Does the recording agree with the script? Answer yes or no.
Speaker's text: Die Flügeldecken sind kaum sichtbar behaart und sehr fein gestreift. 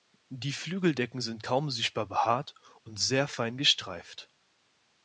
yes